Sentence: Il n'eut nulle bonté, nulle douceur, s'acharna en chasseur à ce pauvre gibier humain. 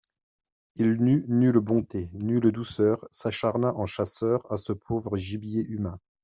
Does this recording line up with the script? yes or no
yes